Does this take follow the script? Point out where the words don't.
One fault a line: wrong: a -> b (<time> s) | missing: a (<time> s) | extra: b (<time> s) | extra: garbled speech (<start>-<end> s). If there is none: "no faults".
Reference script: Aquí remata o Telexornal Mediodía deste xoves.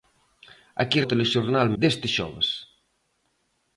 missing: remata (1.0 s)
missing: Mediodía (1.7 s)